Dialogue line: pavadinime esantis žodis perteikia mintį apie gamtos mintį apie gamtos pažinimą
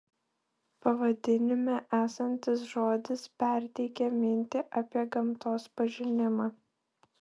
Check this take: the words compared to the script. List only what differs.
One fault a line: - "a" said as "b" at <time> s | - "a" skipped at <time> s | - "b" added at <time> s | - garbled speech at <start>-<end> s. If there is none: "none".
- "mintį apie gamtos" skipped at 5.7 s